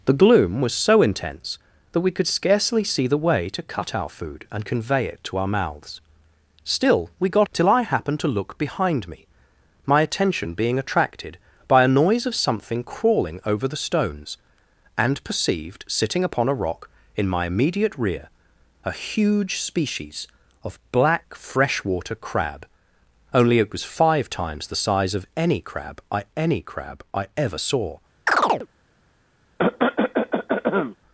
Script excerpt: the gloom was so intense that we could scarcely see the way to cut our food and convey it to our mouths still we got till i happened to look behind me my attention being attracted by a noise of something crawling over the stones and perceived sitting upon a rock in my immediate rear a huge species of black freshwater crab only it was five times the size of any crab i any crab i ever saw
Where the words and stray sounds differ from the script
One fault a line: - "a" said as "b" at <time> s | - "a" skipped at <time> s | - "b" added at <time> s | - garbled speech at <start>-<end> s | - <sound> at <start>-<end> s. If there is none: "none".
- chirp at 28.3-28.7 s
- cough at 29.6-31.0 s